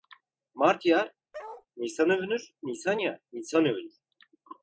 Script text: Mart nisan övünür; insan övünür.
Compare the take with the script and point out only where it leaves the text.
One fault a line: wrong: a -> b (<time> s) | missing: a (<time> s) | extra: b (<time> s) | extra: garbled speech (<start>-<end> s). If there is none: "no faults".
extra: yağar (0.8 s)
extra: nisan yağar (2.6 s)